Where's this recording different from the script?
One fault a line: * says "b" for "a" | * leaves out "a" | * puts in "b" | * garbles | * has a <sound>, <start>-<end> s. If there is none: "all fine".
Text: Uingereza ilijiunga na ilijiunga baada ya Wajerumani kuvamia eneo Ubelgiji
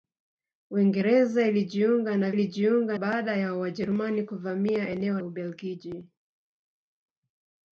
all fine